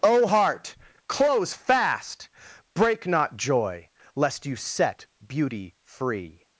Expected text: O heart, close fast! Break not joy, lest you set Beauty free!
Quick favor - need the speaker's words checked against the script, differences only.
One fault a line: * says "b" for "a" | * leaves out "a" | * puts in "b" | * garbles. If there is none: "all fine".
all fine